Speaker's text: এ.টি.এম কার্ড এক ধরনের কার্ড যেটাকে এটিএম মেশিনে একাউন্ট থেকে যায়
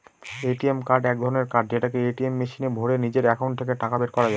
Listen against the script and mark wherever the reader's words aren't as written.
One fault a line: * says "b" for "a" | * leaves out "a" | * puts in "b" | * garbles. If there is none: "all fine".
* puts in "ভোরে নিজের"
* puts in "টাকা বের করা"